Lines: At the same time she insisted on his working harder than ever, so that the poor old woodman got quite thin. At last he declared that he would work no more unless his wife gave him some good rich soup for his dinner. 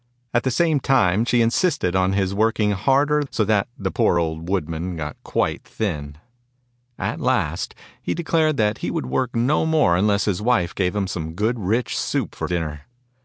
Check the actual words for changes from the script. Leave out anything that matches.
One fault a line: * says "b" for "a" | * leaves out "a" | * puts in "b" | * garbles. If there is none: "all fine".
* leaves out "than ever"
* leaves out "his"